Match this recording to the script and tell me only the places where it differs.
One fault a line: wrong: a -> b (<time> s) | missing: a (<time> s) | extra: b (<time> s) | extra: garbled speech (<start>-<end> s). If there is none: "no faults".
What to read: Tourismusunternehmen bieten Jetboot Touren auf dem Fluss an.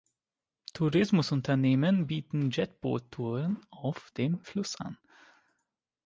no faults